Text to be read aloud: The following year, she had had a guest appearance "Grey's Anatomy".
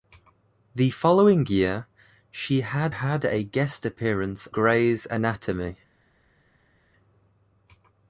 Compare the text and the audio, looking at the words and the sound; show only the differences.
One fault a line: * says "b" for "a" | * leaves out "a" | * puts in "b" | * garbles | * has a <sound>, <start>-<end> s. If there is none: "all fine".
all fine